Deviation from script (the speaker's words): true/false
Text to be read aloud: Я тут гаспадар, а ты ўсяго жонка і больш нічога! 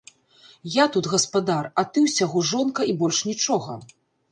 false